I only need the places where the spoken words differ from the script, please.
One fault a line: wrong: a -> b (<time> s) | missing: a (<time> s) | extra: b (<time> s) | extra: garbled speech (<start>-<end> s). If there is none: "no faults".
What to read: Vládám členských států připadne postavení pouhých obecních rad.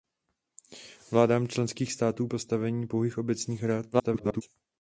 missing: připadne (2.3 s)
extra: garbled speech (3.9-4.4 s)